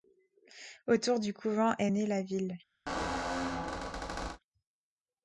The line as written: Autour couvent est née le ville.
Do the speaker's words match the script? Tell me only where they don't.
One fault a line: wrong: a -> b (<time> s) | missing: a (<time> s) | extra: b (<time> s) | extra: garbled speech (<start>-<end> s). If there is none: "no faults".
extra: du (1.2 s)
wrong: le -> la (2.1 s)